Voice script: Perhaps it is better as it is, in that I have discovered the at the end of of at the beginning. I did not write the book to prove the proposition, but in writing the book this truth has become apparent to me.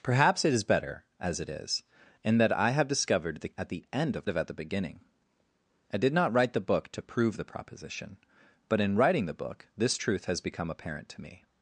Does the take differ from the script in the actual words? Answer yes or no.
no